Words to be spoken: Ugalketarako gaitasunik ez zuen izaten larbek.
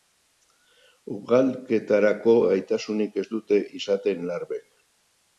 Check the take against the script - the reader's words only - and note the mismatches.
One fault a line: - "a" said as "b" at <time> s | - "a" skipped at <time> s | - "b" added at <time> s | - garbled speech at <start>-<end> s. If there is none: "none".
- "zuen" said as "dute" at 3.3 s